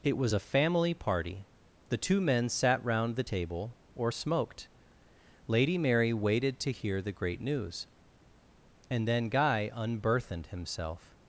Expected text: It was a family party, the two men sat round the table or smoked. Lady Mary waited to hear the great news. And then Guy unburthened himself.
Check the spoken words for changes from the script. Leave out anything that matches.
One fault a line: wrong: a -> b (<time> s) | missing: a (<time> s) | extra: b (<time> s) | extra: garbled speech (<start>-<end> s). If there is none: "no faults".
no faults